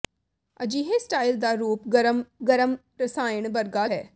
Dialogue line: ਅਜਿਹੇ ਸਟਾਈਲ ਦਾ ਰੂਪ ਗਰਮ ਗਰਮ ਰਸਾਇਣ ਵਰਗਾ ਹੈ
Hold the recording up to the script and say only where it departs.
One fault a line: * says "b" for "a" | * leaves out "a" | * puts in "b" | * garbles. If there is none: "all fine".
all fine